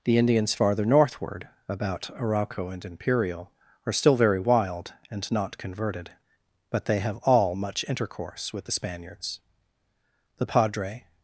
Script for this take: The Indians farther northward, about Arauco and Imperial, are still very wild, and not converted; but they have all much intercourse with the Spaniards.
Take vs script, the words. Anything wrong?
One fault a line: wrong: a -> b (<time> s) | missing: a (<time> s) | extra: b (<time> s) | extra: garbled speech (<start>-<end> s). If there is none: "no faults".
extra: The padre (10.4 s)